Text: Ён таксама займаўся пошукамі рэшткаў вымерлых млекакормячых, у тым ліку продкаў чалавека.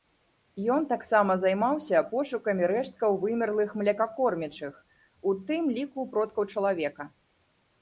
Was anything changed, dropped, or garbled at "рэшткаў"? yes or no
no